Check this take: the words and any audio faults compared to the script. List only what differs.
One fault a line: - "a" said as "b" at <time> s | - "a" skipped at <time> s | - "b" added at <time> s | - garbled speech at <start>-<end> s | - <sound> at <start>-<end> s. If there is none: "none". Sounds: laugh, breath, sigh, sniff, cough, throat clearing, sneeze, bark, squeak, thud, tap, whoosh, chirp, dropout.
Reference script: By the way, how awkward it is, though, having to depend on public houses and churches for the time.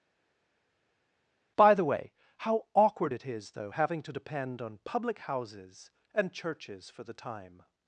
none